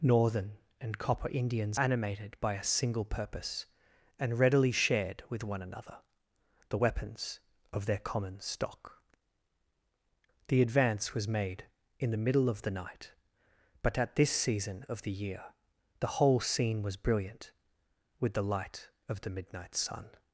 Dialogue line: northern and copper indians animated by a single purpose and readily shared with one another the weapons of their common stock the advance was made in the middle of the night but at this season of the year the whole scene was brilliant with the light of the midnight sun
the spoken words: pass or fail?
pass